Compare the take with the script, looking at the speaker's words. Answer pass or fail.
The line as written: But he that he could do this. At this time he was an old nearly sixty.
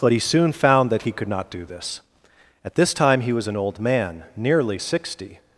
fail